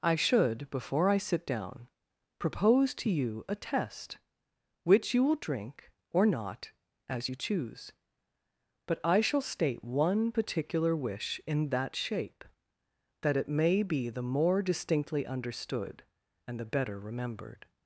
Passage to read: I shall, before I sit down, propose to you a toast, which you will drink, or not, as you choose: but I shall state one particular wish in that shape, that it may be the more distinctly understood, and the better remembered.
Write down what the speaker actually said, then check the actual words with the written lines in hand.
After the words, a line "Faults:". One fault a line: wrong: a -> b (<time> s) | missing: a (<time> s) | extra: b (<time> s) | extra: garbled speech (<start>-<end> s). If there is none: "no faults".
I should, before I sit down, propose to you a test, which you will drink, or not, as you choose: but I shall state one particular wish in that shape, that it may be the more distinctly understood, and the better remembered.
Faults:
wrong: shall -> should (0.1 s)
wrong: toast -> test (3.5 s)